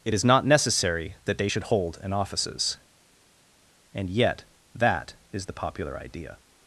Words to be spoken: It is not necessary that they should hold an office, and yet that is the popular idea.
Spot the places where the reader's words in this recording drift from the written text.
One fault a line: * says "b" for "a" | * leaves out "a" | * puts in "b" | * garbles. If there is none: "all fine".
* says "offices" for "office"